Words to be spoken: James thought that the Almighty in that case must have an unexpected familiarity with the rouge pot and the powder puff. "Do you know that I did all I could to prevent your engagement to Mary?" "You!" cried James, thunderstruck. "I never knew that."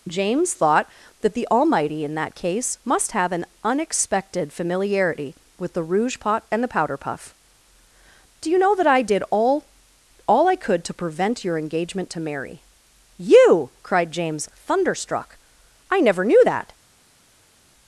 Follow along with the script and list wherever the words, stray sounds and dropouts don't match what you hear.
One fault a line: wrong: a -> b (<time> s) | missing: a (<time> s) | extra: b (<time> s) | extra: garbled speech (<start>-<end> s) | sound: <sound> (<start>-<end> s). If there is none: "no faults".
extra: all (10.3 s)